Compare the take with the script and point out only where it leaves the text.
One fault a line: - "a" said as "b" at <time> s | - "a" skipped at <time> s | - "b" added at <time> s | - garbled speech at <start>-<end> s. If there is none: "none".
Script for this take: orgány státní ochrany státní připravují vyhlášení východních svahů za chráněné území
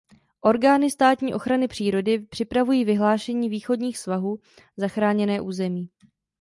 - "státní" said as "přírody" at 1.7 s